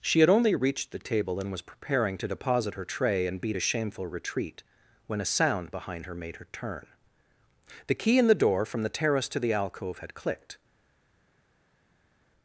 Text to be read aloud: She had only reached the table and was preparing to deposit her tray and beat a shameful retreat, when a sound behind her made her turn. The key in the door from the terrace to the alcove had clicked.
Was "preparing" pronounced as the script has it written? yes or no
yes